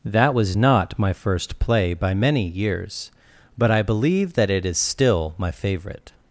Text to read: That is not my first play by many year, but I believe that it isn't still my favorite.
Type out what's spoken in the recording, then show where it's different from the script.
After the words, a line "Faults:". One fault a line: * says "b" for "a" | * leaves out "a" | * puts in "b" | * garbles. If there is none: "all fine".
That was not my first play by many years, but I believe that it is still my favorite.
Faults:
* says "was" for "is"
* says "years" for "year"
* says "is" for "isn't"